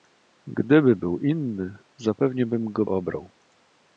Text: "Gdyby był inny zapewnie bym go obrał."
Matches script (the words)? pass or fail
pass